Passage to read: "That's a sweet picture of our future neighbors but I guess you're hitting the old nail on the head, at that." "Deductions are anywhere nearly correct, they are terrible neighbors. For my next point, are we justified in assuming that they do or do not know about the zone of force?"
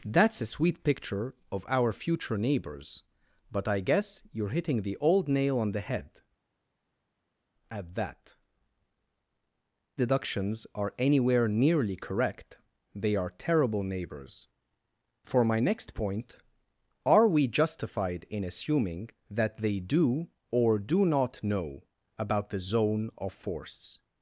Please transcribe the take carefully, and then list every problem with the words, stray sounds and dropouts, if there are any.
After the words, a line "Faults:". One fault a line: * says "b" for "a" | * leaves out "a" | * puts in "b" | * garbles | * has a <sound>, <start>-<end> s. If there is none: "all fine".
"That's a sweet picture of our future neighbors but I guess you're hitting the old nail on the head, at that." "Deductions are anywhere nearly correct, they are terrible neighbors. For my next point, are we justified in assuming that they do or do not know about the zone of force?"
Faults:
all fine